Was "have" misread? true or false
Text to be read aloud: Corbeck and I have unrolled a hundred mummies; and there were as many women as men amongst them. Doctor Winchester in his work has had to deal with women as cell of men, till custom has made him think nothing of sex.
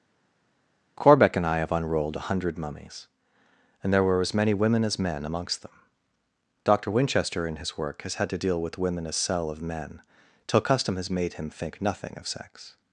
false